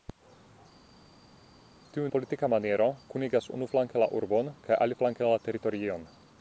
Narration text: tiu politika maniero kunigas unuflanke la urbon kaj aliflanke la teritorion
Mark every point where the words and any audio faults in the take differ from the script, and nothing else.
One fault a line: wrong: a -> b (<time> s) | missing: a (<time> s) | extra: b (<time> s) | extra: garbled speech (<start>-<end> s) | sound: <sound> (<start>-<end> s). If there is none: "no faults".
no faults